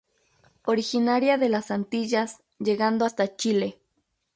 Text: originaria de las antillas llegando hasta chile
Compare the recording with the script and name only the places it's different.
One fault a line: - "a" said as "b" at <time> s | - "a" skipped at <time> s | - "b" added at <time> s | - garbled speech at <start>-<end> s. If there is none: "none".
none